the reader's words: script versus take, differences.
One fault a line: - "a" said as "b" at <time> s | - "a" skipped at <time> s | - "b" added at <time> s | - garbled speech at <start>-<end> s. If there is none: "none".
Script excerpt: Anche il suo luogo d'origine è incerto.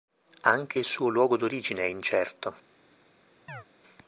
none